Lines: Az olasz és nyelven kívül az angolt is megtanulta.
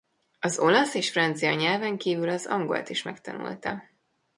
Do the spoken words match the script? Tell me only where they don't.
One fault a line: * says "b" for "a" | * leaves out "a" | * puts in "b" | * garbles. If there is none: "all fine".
* puts in "francia"